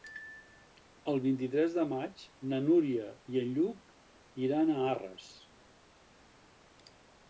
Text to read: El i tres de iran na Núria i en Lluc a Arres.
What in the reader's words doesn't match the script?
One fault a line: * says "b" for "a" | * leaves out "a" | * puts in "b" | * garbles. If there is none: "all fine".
* puts in "vint"
* says "maig" for "iran"
* puts in "iran"